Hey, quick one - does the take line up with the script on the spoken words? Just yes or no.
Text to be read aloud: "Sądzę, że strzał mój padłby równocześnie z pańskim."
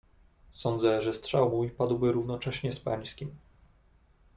yes